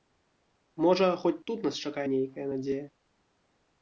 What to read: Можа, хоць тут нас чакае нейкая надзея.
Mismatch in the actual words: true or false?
false